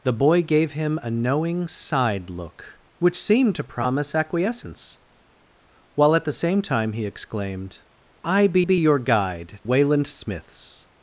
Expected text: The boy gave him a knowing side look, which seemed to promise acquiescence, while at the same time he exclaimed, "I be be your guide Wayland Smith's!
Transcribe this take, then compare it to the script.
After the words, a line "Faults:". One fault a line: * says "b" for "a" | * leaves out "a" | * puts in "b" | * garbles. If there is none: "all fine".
The boy gave him a knowing side look, which seemed to promise acquiescence, while at the same time he exclaimed, "I be be your guide Wayland Smith's!
Faults:
all fine